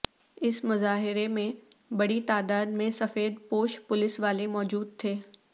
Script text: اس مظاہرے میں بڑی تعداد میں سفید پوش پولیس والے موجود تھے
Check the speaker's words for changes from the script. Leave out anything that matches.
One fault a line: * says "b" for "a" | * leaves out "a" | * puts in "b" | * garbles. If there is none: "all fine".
all fine